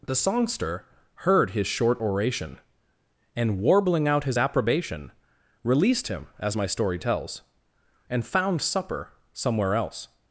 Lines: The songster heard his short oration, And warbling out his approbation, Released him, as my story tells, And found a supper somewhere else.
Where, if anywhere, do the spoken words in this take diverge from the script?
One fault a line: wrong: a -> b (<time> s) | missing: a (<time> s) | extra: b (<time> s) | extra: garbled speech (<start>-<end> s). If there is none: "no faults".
missing: a (8.6 s)